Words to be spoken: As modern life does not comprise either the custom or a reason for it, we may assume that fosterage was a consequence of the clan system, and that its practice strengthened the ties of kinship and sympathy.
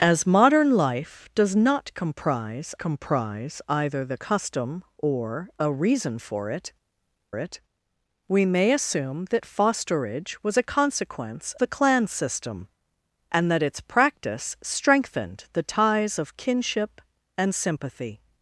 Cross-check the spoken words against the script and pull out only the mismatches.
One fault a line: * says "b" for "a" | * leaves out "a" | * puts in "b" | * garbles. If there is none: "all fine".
* puts in "comprise"
* puts in "it"
* leaves out "of"